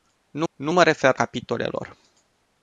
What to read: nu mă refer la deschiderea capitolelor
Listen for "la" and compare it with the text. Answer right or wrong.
wrong